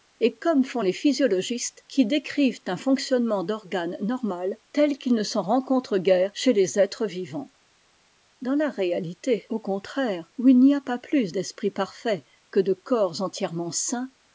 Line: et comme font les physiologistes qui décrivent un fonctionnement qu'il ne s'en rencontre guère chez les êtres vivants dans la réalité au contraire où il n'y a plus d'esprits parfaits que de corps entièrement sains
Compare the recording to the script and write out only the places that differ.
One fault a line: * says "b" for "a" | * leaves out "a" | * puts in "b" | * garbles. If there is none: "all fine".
* puts in "d'organes normal tel"
* puts in "pas"